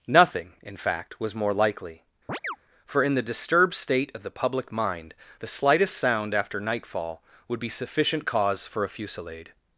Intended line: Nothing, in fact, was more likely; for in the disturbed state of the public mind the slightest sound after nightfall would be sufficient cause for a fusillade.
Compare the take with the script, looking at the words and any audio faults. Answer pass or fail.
fail